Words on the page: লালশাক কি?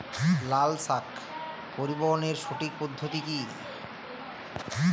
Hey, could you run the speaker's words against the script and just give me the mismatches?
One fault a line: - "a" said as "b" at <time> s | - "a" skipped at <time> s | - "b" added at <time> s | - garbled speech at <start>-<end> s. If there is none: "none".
- "পরিবহনের সঠিক পদ্ধতি" added at 1.8 s